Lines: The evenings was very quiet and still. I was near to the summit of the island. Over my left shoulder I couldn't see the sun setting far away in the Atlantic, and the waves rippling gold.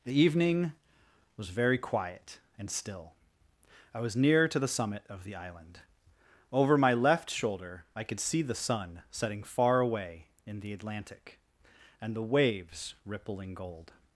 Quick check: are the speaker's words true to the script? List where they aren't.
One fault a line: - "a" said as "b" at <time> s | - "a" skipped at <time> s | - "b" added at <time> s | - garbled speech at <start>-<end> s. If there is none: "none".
- "evenings" said as "evening" at 0.2 s
- "couldn't" said as "could" at 8.0 s